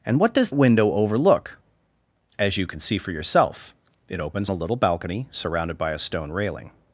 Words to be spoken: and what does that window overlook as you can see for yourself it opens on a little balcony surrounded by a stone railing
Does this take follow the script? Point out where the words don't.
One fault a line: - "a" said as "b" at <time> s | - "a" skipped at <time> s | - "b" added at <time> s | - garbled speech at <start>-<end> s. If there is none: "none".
- "that" skipped at 0.5 s
- "on" skipped at 4.5 s